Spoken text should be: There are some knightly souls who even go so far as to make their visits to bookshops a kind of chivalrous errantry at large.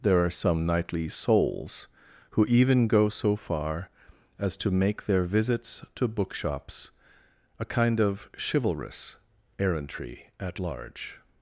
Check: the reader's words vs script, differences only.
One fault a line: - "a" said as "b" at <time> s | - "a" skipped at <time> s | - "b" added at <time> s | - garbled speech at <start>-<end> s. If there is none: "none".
none